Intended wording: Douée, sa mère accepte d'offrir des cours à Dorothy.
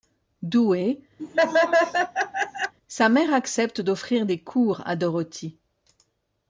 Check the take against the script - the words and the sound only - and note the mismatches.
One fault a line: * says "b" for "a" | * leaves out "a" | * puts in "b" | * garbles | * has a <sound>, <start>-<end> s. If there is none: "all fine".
* has a laugh, 1.2-2.7 s